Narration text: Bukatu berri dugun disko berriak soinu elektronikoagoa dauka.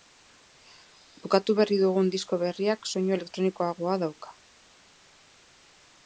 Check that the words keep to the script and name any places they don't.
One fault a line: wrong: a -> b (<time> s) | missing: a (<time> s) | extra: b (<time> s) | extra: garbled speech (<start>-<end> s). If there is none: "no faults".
no faults